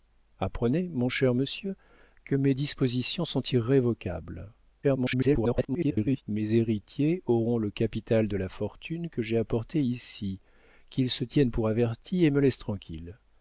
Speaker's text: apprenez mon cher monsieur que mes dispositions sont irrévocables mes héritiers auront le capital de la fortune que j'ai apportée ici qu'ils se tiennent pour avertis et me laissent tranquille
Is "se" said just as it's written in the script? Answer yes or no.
yes